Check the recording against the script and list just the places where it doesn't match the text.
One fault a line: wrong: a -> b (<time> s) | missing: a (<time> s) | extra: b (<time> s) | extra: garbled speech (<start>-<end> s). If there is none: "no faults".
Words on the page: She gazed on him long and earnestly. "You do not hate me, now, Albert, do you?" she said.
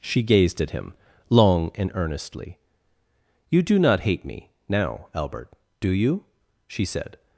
wrong: on -> at (0.6 s)